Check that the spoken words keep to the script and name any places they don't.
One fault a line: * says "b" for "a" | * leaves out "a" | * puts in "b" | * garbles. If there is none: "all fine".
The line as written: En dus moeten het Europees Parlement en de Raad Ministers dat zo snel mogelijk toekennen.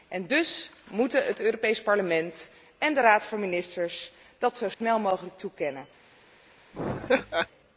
* puts in "van"